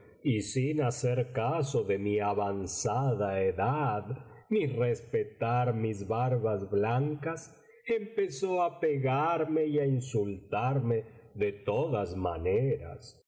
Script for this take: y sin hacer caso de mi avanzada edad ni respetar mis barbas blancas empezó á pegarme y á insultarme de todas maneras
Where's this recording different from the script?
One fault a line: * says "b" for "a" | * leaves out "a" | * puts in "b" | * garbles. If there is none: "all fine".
all fine